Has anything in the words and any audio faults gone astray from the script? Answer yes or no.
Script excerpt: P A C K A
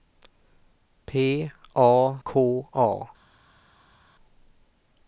yes